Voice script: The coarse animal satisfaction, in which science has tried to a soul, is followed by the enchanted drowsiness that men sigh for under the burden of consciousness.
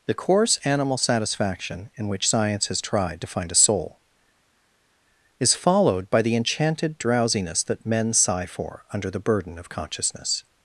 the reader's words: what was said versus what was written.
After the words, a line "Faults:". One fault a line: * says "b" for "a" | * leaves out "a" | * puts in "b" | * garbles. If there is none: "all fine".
The coarse animal satisfaction, in which science has tried to find a soul, is followed by the enchanted drowsiness that men sigh for under the burden of consciousness.
Faults:
* puts in "find"